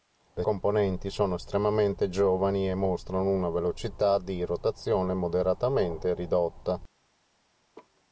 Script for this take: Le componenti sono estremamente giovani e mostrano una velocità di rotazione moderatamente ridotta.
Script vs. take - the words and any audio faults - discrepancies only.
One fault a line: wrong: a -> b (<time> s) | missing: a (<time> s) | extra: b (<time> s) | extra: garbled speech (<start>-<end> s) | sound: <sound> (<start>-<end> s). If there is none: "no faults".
sound: laugh (7.7-8.0 s)